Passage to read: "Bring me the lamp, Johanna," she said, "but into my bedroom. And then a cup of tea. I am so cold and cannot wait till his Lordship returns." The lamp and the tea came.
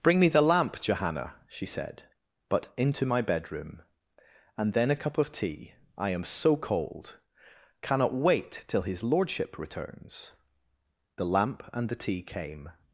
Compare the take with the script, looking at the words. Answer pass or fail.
fail